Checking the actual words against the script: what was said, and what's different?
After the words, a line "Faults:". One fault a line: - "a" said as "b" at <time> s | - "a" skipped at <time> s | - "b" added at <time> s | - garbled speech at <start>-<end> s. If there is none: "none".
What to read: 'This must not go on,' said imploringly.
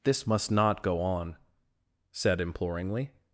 'This must not go on,' said imploringly.
Faults:
none